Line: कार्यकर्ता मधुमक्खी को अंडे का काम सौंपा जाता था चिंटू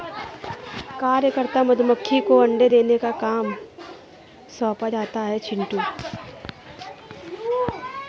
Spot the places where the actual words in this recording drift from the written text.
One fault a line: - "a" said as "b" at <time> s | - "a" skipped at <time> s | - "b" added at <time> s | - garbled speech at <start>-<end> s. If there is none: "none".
- "देने" added at 2.7 s
- "था" said as "है" at 5.2 s